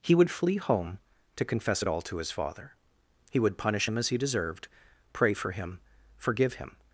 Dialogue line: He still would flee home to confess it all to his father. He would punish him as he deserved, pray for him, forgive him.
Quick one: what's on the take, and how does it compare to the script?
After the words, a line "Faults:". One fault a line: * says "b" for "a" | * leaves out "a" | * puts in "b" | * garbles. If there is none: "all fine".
He would flee home to confess it all to his father. He would punish him as he deserved, pray for him, forgive him.
Faults:
* leaves out "still"